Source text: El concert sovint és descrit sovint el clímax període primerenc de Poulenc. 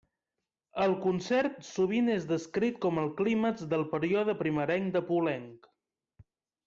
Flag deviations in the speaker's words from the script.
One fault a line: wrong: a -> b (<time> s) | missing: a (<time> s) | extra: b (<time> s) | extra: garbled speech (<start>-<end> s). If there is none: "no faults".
wrong: sovint -> com (2.9 s)
extra: del (3.8 s)